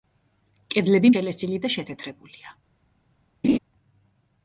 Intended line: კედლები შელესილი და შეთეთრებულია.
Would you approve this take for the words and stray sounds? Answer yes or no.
no